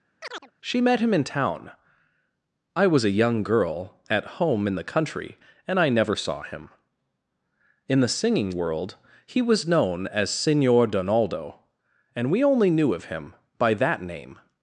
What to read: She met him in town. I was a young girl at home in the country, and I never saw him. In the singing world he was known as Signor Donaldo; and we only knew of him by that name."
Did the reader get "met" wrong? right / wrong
right